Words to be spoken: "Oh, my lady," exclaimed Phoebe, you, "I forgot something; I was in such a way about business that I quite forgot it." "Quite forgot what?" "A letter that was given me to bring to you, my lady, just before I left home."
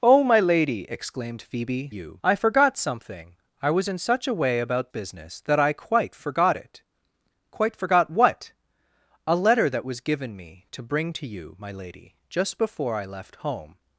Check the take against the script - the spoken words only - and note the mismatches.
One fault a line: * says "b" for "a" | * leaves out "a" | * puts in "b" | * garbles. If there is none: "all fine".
all fine